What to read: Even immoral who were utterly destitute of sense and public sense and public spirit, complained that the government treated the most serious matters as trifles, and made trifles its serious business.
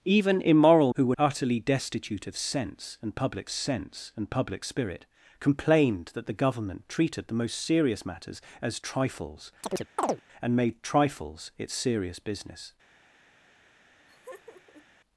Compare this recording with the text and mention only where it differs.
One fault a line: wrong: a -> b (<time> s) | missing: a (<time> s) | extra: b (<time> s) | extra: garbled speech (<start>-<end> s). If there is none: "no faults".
no faults